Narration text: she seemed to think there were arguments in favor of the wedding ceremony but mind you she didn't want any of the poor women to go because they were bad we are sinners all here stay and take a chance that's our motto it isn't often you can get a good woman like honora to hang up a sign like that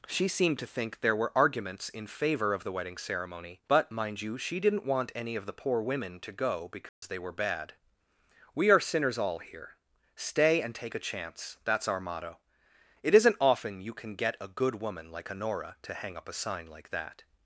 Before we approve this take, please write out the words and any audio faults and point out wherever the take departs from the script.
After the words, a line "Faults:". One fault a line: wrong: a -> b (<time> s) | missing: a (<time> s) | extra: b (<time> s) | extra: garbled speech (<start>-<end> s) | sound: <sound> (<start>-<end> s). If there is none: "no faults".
she seemed to think there were arguments in favor of the wedding ceremony but mind you she didn't want any of the poor women to go because they were bad we are sinners all here stay and take a chance that's our motto it isn't often you can get a good woman like honora to hang up a sign like that
Faults:
sound: dropout (6.9-7.0 s)